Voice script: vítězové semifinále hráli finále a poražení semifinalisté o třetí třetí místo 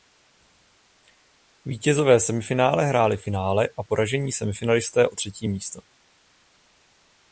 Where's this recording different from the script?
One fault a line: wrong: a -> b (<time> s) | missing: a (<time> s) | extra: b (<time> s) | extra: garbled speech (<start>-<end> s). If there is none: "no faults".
missing: třetí (5.5 s)